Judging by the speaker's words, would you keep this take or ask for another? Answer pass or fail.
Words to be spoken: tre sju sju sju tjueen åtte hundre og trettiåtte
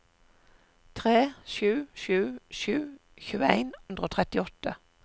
fail